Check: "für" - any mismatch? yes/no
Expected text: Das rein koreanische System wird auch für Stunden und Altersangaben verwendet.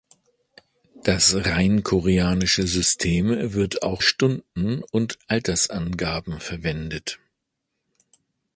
yes